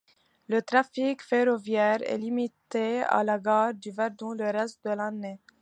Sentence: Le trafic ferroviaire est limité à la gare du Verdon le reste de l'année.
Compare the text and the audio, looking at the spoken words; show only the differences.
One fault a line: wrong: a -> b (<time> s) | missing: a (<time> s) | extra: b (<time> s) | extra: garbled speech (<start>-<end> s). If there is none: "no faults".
no faults